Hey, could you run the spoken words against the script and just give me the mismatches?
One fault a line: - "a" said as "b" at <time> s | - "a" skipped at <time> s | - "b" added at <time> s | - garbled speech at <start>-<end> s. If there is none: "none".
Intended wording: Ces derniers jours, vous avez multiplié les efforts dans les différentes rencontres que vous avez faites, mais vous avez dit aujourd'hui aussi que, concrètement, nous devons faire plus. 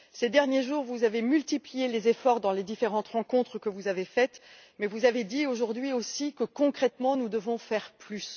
none